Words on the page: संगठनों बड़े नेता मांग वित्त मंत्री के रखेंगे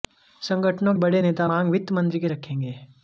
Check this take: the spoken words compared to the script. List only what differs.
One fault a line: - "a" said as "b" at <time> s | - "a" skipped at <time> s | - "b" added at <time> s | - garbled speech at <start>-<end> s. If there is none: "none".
none